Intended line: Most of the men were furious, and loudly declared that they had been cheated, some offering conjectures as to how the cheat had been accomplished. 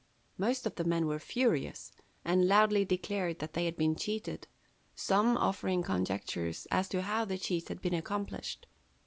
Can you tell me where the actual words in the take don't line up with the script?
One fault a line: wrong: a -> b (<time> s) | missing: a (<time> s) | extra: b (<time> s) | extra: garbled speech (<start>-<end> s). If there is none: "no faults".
no faults